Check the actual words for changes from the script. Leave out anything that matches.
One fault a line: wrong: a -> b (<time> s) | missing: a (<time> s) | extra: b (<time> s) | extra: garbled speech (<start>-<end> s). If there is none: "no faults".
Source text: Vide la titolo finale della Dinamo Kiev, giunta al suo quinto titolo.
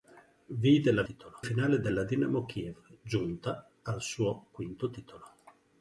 no faults